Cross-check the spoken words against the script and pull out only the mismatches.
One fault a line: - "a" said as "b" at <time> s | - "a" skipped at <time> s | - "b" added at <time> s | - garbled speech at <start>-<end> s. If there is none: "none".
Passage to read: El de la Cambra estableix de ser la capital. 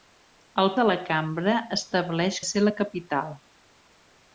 none